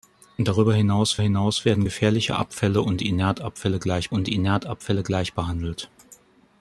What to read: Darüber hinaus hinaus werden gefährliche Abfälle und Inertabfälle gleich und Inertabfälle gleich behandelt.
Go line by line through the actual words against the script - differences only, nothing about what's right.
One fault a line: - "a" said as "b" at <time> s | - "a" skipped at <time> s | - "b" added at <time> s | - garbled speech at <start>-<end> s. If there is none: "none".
none